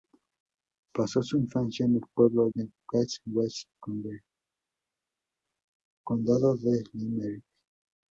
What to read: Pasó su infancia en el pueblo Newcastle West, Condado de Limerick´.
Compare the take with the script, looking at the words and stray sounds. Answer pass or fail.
pass